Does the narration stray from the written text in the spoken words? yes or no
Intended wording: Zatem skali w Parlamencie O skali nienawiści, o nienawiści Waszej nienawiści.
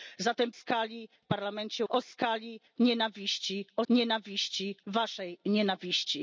no